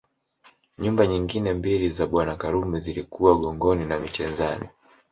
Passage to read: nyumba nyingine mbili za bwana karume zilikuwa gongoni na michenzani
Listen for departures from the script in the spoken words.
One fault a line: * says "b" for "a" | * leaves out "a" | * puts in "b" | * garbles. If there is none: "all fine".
all fine